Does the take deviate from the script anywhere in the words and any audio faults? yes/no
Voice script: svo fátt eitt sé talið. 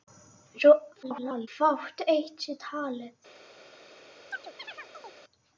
yes